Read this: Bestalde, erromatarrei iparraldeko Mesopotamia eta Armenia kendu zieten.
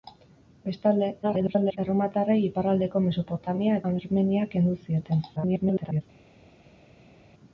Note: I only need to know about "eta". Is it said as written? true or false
false